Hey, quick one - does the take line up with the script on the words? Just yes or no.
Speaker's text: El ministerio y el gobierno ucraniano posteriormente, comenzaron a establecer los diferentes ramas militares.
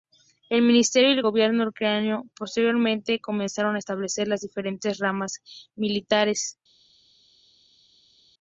no